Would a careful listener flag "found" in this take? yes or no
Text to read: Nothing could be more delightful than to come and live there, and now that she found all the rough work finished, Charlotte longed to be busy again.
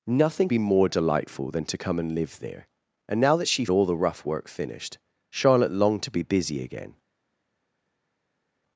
yes